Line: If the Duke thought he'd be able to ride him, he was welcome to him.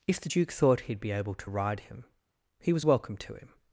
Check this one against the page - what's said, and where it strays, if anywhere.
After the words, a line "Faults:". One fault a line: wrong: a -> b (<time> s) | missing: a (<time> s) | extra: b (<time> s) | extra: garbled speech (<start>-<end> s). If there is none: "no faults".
If the Duke thought he'd be able to ride him, he was welcome to him.
Faults:
no faults